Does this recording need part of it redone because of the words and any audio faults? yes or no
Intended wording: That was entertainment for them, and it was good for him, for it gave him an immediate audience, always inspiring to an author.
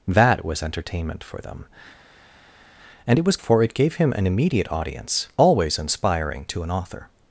yes